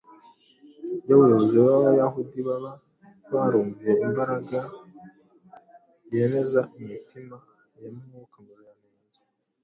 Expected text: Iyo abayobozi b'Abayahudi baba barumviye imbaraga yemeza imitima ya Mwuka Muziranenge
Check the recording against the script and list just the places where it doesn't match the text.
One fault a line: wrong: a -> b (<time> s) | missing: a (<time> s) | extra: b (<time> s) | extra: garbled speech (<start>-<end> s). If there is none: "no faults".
no faults